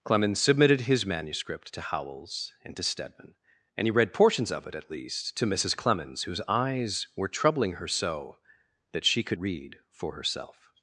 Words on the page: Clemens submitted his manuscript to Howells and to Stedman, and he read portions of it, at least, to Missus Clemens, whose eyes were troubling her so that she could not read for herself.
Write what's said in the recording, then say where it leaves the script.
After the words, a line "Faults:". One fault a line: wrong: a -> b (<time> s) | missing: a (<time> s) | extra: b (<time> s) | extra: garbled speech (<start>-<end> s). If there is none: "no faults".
Clemens submitted his manuscript to Howells and to Stedman, and he read portions of it, at least, to Missus Clemens, whose eyes were troubling her so that she could read for herself.
Faults:
missing: not (9.4 s)